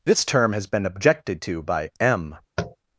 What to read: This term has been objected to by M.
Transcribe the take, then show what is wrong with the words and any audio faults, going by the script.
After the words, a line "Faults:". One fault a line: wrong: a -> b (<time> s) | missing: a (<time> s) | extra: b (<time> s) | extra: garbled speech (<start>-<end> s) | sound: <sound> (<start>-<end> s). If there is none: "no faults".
This term has been objected to by M.
Faults:
sound: tap (2.6-2.8 s)